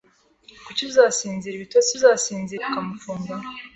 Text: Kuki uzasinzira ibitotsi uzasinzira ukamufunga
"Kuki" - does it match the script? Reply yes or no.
yes